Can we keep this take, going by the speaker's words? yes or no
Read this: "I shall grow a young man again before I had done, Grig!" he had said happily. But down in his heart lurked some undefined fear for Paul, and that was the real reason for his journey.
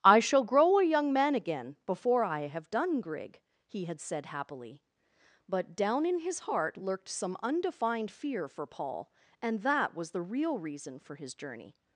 no